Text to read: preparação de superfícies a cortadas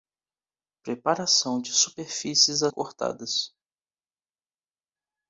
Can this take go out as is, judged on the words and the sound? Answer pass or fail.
pass